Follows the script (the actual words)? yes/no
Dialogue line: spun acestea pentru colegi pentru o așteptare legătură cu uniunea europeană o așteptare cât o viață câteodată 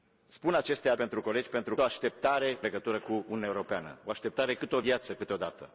yes